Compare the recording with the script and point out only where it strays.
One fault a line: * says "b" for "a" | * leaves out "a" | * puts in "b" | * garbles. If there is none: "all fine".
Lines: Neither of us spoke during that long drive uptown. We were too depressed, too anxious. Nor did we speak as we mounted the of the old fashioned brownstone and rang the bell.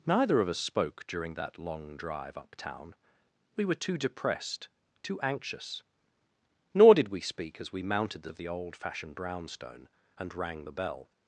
all fine